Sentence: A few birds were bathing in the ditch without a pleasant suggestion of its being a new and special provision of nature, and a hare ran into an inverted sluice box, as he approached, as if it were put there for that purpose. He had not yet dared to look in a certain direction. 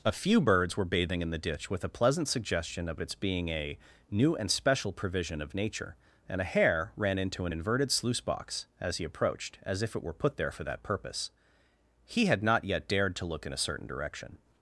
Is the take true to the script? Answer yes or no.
no